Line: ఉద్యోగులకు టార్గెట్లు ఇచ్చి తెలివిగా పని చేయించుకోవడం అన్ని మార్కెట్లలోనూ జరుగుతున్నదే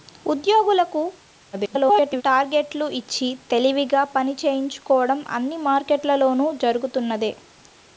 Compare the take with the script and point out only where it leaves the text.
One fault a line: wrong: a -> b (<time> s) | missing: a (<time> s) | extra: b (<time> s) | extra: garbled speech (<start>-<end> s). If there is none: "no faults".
extra: garbled speech (1.5-2.2 s)